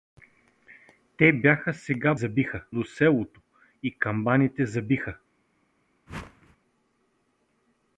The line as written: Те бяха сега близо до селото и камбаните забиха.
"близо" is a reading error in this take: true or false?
true